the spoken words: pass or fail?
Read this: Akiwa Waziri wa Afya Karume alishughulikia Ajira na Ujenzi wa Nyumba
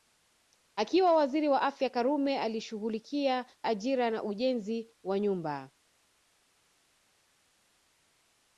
pass